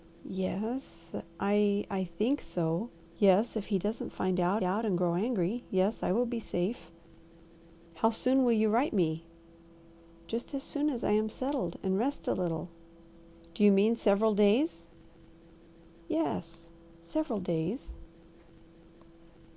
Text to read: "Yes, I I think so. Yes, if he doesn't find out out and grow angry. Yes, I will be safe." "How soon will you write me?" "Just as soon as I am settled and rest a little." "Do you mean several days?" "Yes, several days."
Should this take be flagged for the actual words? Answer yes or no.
no